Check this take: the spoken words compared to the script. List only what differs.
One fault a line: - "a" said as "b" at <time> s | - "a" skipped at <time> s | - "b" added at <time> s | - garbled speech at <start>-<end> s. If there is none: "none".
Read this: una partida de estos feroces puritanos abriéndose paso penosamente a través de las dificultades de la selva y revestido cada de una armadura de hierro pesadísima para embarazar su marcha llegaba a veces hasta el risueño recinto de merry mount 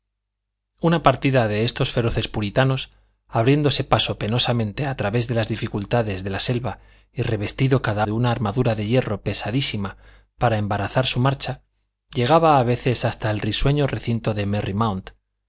none